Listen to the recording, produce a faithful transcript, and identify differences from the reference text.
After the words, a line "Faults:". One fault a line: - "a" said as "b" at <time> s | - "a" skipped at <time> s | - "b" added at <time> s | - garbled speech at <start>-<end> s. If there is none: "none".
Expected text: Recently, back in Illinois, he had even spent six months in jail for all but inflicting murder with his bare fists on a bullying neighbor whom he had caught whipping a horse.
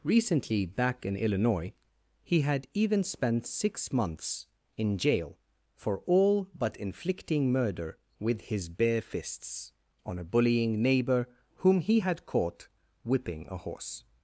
Recently, back in Illinois, he had even spent six months in jail for all but inflicting murder with his bare fists on a bullying neighbor whom he had caught whipping a horse.
Faults:
none